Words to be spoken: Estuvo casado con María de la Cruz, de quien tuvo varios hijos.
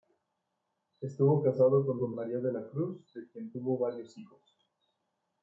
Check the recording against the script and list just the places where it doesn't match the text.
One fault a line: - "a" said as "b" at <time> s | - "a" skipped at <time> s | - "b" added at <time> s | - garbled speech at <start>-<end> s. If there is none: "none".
- "con" added at 2.0 s